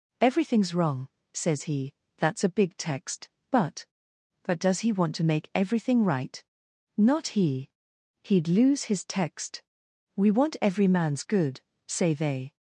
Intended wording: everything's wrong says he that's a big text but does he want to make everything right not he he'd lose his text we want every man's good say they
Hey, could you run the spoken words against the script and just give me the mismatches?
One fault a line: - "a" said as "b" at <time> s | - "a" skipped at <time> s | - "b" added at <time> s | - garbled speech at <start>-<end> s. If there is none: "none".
- "but" added at 4.4 s